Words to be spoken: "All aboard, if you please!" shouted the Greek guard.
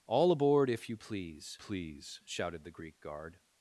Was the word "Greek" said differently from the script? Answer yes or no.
no